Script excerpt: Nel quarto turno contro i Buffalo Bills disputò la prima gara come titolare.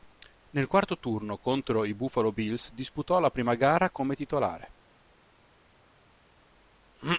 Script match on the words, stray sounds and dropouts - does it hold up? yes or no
yes